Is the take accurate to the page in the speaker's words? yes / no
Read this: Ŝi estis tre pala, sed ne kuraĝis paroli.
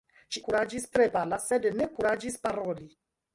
no